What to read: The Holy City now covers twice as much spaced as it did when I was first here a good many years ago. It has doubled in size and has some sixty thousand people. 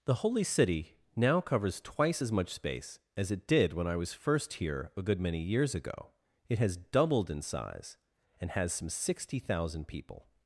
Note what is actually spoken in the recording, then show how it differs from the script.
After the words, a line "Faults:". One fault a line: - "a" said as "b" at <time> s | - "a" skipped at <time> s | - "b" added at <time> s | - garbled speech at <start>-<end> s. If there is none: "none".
The Holy City now covers twice as much space as it did when I was first here a good many years ago. It has doubled in size and has some sixty thousand people.
Faults:
- "spaced" said as "space" at 2.5 s